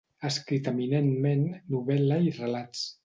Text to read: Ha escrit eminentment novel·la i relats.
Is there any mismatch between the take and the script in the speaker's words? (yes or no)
no